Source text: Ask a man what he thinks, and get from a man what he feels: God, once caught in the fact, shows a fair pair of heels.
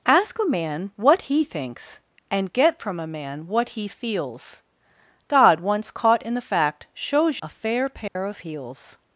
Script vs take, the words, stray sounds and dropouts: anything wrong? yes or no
yes